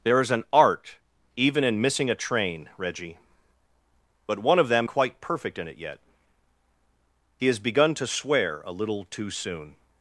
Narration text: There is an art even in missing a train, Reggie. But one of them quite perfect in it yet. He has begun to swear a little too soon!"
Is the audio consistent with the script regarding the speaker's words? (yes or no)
yes